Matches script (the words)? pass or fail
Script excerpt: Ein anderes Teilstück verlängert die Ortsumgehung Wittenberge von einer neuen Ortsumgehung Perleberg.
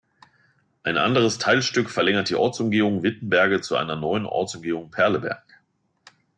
fail